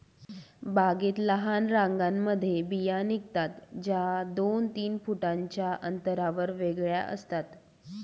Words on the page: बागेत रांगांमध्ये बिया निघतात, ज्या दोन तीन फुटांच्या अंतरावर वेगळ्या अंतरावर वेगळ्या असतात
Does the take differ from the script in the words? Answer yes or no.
yes